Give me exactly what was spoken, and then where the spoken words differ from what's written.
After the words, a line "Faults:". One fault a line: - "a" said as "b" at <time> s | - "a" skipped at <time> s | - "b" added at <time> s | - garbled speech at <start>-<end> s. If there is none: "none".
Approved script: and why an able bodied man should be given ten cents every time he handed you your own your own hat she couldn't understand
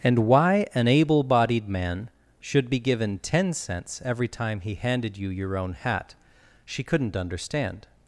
and why an able bodied man should be given ten cents every time he handed you your own hat she couldn't understand
Faults:
- "your own" skipped at 5.7 s